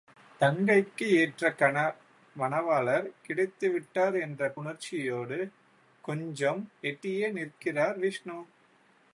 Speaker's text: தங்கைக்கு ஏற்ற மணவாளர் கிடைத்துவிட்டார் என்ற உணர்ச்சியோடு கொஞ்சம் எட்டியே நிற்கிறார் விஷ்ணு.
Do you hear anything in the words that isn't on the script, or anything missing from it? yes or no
no